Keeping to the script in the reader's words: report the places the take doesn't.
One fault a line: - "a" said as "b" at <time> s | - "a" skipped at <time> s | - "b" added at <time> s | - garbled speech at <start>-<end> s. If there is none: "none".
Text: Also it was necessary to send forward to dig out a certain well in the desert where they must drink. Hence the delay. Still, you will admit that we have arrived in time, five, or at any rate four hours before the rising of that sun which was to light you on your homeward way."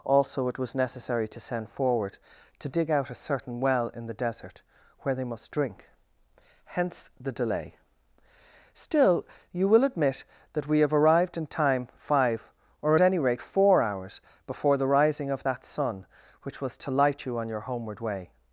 - "at" skipped at 12.9 s